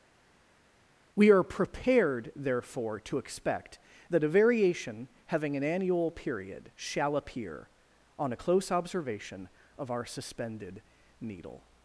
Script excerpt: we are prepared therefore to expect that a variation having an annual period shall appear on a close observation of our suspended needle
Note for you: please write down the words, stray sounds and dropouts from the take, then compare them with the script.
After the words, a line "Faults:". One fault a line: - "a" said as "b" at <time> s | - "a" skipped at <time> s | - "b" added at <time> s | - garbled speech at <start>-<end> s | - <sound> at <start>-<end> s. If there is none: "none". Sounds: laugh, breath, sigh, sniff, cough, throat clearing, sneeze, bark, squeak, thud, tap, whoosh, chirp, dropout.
we are prepared therefore to expect that a variation having an annual period shall appear on a close observation of our suspended needle
Faults:
none